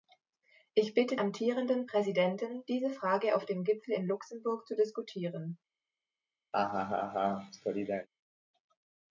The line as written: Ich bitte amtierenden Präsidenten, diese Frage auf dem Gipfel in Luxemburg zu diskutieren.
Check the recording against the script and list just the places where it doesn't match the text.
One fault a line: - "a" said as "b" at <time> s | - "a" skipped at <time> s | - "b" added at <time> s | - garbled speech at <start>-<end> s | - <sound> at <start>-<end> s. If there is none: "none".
- laugh at 6.5-8.1 s